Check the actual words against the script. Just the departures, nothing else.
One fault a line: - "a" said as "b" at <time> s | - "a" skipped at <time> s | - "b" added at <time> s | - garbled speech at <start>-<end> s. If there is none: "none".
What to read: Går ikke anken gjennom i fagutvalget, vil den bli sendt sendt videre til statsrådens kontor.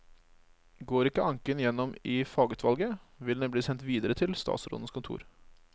- "sendt" skipped at 3.9 s